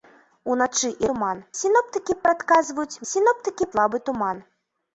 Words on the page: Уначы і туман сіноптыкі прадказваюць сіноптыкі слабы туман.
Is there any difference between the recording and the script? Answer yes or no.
no